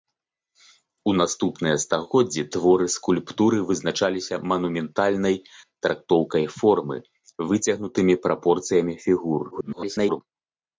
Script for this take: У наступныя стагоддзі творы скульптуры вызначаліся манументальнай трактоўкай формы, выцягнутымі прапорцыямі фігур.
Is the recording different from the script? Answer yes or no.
yes